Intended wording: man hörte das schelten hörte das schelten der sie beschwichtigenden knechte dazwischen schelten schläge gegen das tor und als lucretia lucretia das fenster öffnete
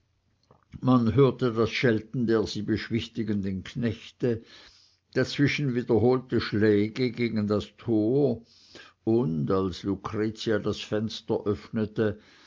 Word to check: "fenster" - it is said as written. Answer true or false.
true